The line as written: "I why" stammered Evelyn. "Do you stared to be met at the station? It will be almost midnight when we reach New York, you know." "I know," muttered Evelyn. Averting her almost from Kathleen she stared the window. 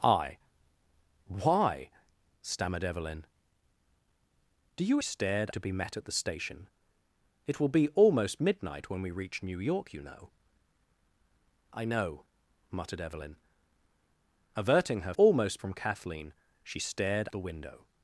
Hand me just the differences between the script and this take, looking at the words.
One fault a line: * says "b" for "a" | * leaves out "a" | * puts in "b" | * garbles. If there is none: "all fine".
all fine